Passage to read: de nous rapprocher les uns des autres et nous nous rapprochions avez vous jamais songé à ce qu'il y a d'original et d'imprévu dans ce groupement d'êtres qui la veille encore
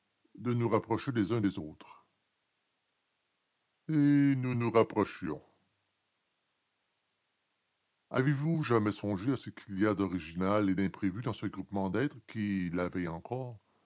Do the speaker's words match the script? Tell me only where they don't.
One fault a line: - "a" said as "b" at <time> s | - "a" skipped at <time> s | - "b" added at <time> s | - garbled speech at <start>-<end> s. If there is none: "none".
none